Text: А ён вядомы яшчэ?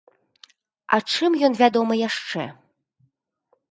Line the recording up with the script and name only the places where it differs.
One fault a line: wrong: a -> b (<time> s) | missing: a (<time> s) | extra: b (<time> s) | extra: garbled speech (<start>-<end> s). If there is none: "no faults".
extra: чым (1.1 s)